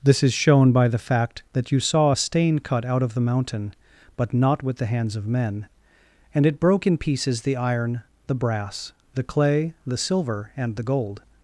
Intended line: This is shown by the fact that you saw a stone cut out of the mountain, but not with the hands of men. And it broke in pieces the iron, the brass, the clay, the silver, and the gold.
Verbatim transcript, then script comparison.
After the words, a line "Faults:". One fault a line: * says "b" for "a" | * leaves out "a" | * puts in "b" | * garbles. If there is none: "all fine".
This is shown by the fact that you saw a stain cut out of the mountain, but not with the hands of men. And it broke in pieces the iron, the brass, the clay, the silver, and the gold.
Faults:
* says "stain" for "stone"